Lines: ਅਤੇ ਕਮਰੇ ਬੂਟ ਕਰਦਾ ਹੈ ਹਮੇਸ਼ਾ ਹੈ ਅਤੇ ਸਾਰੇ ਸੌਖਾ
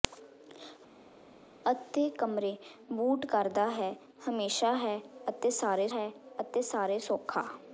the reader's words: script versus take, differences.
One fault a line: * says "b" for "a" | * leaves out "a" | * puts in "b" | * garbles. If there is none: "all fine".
* puts in "ਹੈ ਅਤੇ ਸਾਰੇ"